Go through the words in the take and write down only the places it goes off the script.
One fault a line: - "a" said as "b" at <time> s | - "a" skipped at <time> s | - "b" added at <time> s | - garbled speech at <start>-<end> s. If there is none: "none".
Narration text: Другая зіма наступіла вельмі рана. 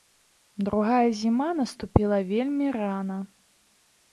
none